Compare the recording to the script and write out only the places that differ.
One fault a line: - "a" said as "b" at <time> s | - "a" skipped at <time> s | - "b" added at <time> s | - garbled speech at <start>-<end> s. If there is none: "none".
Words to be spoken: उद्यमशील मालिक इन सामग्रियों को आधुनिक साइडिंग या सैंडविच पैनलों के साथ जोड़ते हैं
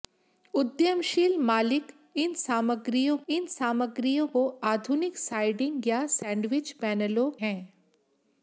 - "इन सामग्रियों" added at 3.3 s
- "के साथ जोड़ते" skipped at 7.3 s